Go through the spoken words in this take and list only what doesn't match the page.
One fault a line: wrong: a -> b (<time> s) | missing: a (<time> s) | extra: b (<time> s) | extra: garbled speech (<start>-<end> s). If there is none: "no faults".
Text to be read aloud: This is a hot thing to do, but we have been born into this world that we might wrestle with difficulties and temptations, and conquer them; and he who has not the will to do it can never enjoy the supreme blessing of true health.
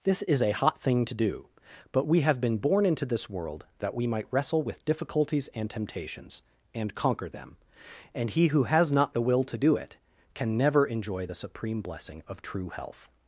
no faults